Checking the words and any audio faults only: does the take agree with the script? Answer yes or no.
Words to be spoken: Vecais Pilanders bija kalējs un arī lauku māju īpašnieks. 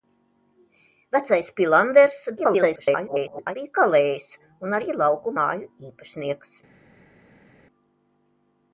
no